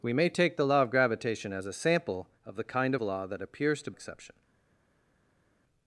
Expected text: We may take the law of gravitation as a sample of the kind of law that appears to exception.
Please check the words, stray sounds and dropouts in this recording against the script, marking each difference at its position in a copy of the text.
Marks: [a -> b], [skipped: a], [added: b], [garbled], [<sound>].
We may take the law of gravitation as a sample of the kind of law that appears to exception.